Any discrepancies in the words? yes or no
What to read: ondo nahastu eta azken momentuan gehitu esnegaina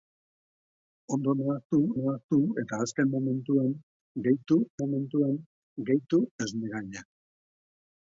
yes